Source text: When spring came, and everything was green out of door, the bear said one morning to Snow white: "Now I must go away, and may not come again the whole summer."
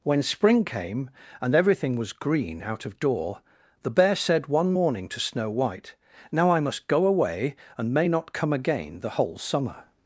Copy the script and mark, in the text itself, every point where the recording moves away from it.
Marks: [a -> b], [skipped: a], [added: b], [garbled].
When spring came, and everything was green out of door, the bear said one morning to Snow white: "Now I must go away, and may not come again the whole summer."